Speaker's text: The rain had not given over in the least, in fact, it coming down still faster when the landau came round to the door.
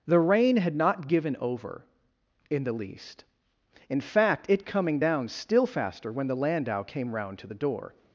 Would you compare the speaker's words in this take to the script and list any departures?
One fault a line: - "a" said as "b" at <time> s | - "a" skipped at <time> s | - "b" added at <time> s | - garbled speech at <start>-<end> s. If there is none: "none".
none